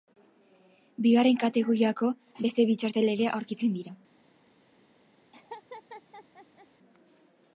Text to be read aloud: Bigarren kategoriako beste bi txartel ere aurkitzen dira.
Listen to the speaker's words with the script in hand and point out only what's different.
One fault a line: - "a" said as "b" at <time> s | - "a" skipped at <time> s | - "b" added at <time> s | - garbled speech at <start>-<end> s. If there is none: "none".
none